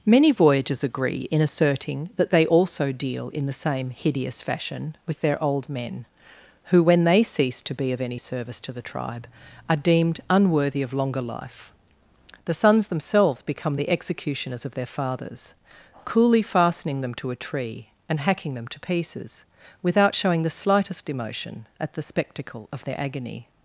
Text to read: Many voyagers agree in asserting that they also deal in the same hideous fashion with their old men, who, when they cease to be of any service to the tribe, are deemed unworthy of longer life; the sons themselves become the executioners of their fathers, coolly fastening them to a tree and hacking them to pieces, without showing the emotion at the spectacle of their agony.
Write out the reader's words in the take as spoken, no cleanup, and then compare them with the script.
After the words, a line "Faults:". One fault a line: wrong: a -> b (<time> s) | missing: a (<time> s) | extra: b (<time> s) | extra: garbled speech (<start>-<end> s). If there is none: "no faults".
Many voyagers agree in asserting that they also deal in the same hideous fashion with their old men, who, when they cease to be of any service to the tribe, are deemed unworthy of longer life; the sons themselves become the executioners of their fathers, coolly fastening them to a tree and hacking them to pieces, without showing the slightest emotion at the spectacle of their agony.
Faults:
extra: slightest (20.5 s)